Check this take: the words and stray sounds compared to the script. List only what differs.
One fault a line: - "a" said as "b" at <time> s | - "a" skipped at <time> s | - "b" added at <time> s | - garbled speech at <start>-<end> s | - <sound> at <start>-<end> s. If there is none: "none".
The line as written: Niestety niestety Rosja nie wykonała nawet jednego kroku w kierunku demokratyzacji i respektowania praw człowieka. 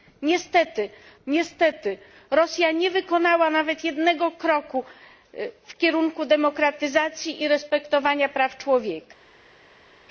none